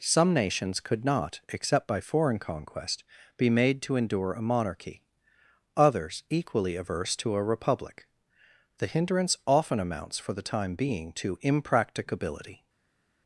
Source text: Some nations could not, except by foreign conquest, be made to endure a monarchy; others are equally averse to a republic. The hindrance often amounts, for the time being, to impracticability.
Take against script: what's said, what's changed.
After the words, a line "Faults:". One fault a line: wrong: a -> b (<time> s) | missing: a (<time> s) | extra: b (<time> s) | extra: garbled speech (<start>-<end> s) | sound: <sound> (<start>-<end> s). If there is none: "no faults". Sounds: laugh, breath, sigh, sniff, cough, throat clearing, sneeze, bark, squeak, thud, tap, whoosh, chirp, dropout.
Some nations could not, except by foreign conquest, be made to endure a monarchy; others equally averse to a republic. The hindrance often amounts, for the time being, to impracticability.
Faults:
missing: are (6.2 s)